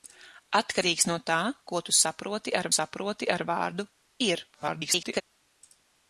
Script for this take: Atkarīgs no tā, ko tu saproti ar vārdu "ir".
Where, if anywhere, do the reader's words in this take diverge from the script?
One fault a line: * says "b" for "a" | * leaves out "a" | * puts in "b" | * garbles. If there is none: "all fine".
* puts in "saproti ar"
* garbles